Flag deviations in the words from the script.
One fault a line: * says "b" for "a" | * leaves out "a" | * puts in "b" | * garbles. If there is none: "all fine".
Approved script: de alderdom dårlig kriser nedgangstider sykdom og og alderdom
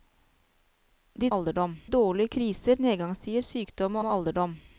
all fine